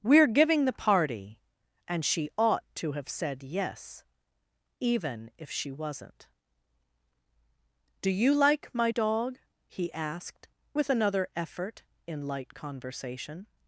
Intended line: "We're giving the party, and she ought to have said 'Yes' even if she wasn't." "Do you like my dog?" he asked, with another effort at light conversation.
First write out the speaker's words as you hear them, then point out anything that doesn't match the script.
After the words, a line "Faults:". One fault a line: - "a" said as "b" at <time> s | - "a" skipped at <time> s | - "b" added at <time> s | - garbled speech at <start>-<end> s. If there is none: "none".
"We're giving the party, and she ought to have said 'Yes' even if she wasn't." "Do you like my dog?" he asked, with another effort in light conversation.
Faults:
- "at" said as "in" at 12.1 s